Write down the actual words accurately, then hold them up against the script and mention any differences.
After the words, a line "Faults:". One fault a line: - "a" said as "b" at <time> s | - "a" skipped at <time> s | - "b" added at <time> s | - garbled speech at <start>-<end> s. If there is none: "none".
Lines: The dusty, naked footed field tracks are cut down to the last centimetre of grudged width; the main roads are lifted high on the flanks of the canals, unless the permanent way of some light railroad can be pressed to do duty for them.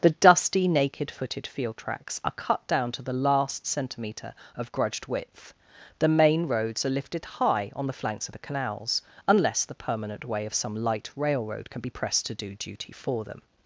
The dusty, naked footed field tracks are cut down to the last centimetre of grudged width; the main roads are lifted high on the flanks of the canals, unless the permanent way of some light railroad can be pressed to do duty for them.
Faults:
none